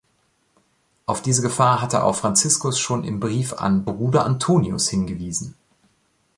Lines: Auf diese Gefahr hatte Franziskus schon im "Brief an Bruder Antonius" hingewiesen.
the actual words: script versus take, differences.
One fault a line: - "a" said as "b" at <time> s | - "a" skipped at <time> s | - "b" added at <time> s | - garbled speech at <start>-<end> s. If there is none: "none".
- "auch" added at 2.0 s